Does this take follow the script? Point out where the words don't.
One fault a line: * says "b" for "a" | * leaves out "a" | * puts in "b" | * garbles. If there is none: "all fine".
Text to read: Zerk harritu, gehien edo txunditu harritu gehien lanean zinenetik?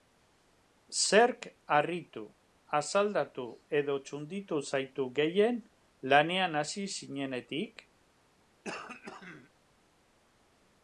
* says "asaldatu" for "gehien"
* says "zaitu" for "harritu"
* puts in "hasi"